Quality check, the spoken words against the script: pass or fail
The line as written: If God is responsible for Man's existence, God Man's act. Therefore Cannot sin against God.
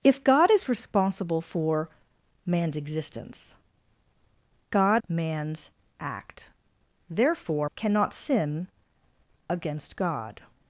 pass